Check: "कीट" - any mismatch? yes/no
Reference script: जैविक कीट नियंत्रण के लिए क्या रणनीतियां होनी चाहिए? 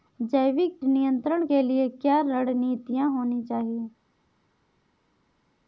yes